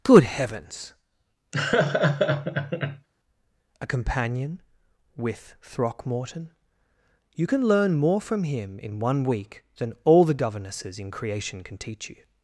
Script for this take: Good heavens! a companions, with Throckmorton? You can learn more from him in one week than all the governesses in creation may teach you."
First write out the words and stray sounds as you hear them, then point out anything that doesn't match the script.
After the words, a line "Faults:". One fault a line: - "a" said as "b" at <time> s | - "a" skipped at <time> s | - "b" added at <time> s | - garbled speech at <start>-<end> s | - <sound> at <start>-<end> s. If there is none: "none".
Good heavens! a companion, with Throckmorton? You can learn more from him in one week than all the governesses in creation can teach you."
Faults:
- laugh at 1.5-3.1 s
- "companions" said as "companion" at 3.9 s
- "may" said as "can" at 11.6 s